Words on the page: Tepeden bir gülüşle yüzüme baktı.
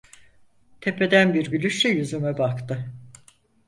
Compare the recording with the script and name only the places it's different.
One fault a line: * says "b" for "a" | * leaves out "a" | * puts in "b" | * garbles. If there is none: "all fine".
all fine